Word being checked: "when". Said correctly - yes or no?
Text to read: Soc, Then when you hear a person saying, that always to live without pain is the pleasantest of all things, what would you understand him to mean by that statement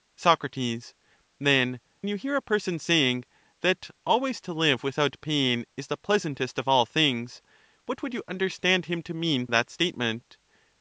no